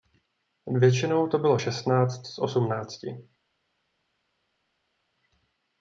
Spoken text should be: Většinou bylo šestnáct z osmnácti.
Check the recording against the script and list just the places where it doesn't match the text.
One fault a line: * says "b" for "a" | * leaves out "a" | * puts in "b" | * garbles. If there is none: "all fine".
* puts in "to"